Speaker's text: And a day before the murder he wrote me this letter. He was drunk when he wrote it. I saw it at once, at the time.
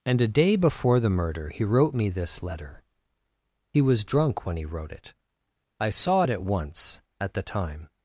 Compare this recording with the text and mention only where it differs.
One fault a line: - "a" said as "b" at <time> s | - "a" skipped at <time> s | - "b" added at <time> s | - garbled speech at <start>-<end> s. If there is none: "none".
none